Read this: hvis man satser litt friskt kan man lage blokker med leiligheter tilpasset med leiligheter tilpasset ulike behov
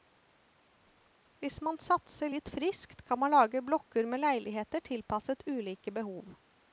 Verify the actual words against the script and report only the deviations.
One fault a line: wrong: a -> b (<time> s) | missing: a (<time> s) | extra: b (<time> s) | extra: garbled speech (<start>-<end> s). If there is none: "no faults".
missing: med leiligheter tilpasset (5.4 s)